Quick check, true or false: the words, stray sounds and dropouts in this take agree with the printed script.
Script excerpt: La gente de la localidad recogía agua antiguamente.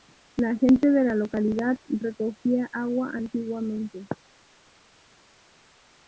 true